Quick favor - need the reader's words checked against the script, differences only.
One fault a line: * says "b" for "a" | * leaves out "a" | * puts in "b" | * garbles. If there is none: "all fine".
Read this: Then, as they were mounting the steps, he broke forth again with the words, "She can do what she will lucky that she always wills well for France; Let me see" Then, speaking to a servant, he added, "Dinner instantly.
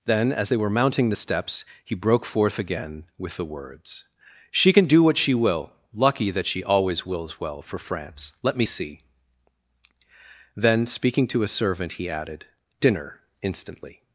all fine